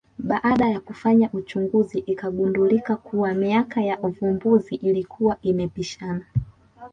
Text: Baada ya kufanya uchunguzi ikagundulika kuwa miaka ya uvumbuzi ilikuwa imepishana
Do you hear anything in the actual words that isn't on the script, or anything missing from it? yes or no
no